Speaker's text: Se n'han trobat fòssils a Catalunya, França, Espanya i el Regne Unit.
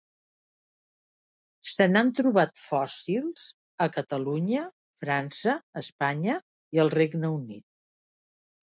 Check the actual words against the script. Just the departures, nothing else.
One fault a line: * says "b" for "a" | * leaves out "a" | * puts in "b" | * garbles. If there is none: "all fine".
all fine